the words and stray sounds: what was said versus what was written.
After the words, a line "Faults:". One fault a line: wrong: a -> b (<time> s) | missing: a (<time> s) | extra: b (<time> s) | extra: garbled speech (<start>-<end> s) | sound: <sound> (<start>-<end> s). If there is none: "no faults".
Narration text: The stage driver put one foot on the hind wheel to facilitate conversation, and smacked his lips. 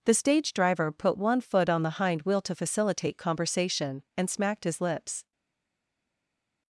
The stage driver put one foot on the hind wheel to facilitate conversation, and smacked his lips.
Faults:
no faults